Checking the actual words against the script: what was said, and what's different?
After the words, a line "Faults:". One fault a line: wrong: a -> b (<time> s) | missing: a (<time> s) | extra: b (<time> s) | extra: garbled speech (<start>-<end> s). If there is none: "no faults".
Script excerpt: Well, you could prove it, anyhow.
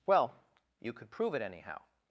Well, you could prove it, anyhow.
Faults:
no faults